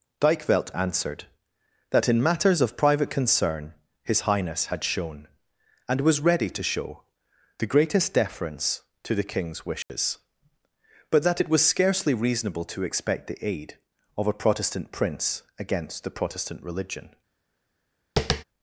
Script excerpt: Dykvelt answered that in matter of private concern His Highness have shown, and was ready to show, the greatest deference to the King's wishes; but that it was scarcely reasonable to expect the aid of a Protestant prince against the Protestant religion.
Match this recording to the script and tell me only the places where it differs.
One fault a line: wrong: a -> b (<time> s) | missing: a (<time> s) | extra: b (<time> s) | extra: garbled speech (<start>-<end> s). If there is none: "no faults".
wrong: matter -> matters (2.2 s)
wrong: have -> had (4.7 s)